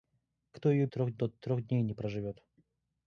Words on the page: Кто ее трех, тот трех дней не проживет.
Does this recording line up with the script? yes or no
yes